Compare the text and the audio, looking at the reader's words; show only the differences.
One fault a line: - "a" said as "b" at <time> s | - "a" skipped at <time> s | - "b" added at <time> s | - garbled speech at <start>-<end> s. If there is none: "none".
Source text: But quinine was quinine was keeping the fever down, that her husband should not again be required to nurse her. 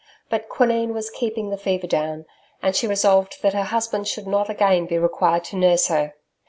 - "quinine was" skipped at 1.1 s
- "and she resolved" added at 2.6 s